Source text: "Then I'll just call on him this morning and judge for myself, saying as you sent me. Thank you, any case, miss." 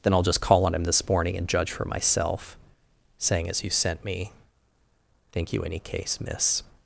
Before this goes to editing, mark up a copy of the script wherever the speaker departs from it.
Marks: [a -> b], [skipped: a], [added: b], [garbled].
"Then I'll just call on him this morning and judge for myself, saying as you sent me. Thank you, any case, miss."